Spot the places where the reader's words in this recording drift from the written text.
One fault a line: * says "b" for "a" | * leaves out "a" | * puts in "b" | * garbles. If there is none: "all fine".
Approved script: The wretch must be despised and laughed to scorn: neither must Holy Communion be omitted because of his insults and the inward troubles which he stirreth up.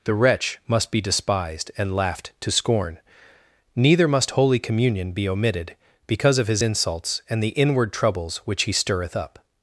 all fine